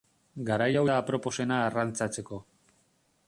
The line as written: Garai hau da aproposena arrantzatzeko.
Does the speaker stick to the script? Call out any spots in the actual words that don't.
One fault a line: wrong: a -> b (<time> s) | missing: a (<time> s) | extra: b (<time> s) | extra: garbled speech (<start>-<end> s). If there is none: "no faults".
no faults